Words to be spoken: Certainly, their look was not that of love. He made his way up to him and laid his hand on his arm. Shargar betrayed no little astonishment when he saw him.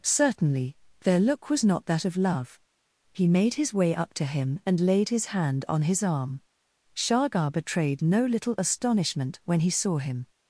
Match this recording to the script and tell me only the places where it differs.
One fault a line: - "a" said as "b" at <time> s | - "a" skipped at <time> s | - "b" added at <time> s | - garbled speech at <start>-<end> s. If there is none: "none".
none